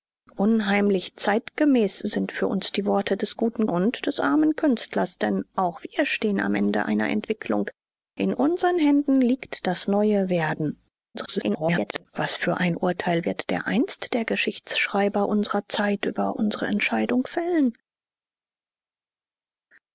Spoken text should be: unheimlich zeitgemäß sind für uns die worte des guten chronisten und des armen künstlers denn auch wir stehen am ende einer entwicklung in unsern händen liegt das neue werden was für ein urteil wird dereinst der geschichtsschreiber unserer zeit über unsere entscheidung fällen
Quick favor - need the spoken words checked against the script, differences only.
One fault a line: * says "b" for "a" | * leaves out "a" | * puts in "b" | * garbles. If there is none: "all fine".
* leaves out "chronisten"
* garbles